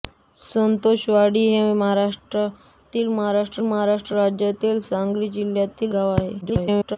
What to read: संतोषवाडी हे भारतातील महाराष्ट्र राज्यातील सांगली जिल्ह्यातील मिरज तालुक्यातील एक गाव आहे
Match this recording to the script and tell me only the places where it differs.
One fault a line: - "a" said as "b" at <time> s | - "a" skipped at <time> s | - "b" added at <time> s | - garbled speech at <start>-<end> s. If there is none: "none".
- "महाराष्ट्र" added at 3.6 s
- "मिरज तालुक्यातील एक" skipped at 5.9 s
- garbled speech at 6.4-7.0 s